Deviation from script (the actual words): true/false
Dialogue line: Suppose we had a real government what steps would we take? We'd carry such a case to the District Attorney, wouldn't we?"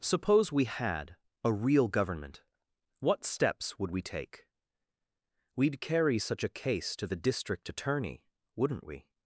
false